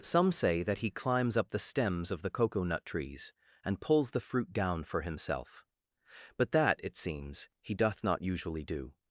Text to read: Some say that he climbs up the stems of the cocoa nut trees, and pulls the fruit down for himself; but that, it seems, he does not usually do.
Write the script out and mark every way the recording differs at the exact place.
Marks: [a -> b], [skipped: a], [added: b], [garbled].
Some say that he climbs up the stems of the cocoa nut trees, and pulls the fruit down for himself; but that, it seems, he [does -> doth] not usually do.